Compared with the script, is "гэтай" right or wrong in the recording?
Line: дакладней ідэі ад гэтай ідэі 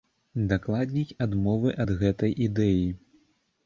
right